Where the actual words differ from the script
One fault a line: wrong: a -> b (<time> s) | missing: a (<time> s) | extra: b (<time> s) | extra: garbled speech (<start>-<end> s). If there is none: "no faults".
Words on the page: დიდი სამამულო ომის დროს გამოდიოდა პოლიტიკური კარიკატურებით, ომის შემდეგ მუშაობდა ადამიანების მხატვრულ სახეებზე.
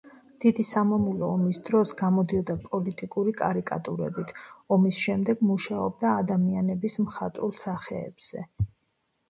no faults